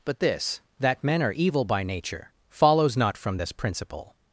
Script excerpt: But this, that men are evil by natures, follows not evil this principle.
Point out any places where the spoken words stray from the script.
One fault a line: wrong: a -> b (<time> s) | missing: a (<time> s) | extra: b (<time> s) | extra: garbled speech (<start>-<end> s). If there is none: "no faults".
wrong: natures -> nature (1.8 s)
wrong: evil -> from (3.2 s)